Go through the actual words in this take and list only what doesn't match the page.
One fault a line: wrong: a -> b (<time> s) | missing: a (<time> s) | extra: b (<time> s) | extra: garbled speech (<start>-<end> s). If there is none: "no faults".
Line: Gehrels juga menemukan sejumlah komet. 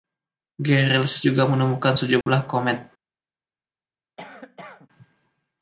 no faults